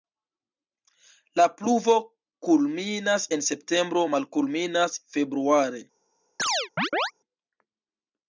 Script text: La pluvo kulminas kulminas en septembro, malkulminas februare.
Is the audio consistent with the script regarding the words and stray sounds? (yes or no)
no